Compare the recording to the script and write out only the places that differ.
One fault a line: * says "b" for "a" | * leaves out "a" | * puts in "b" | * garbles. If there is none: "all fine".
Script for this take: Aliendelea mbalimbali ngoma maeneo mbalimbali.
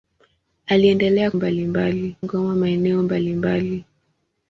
all fine